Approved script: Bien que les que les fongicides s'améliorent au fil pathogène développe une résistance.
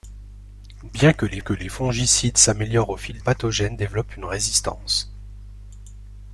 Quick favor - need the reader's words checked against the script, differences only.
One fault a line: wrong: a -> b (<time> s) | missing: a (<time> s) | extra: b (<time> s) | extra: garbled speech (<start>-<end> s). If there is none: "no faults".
no faults